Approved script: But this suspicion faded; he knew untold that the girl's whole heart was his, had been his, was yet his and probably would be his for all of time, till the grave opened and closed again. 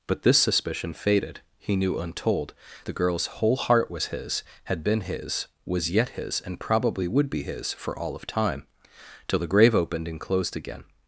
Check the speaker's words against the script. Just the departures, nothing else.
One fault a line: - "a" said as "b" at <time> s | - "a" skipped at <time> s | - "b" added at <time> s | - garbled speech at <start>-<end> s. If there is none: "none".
- "that" skipped at 2.5 s